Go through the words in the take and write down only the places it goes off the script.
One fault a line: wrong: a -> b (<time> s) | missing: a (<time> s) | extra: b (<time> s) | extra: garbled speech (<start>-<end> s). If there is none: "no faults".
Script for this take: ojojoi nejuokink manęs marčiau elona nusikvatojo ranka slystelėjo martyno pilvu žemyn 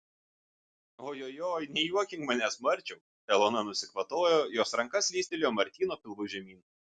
extra: jos (4.6 s)